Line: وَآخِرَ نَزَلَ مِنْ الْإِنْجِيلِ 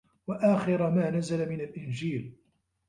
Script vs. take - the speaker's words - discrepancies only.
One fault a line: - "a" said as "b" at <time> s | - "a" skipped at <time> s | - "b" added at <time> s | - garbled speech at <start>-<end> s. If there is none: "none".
- "مَا" added at 0.9 s